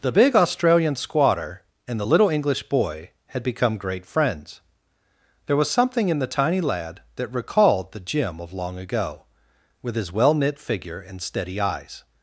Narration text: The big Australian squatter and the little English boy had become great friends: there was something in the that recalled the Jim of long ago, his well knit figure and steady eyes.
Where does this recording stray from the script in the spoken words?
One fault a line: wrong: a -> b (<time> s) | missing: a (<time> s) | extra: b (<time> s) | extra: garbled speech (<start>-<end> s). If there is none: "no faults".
extra: tiny lad (6.3 s)
extra: with (9.8 s)